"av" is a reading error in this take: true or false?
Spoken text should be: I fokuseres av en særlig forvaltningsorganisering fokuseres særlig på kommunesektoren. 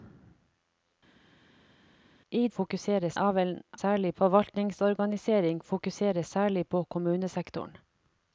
false